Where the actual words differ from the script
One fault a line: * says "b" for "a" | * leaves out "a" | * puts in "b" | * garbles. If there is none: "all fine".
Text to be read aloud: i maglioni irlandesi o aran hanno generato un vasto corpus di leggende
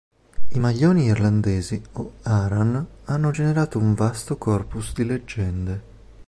all fine